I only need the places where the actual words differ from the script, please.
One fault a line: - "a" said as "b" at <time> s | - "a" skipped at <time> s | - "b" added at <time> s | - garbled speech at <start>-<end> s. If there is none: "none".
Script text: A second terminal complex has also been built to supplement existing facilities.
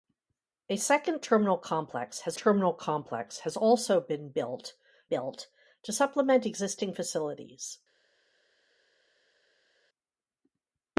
- "terminal complex has" added at 2.4 s
- "built" added at 5.1 s